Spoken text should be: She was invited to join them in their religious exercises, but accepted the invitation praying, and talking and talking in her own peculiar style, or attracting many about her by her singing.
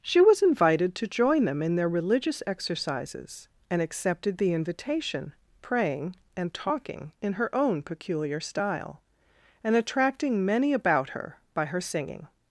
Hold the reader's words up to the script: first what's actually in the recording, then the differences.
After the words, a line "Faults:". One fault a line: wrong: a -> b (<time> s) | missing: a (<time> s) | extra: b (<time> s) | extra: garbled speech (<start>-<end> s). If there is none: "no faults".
She was invited to join them in their religious exercises, and accepted the invitation praying, and talking in her own peculiar style, and attracting many about her by her singing.
Faults:
wrong: but -> and (3.7 s)
missing: and talking (7.1 s)
wrong: or -> and (9.6 s)